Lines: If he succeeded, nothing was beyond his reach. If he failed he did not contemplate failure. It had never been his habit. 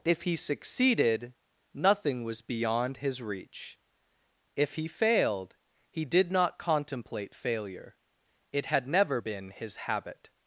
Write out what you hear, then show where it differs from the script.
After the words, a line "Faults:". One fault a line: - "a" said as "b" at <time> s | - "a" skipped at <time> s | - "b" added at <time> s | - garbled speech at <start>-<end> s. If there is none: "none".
If he succeeded, nothing was beyond his reach. If he failed he did not contemplate failure. It had never been his habit.
Faults:
none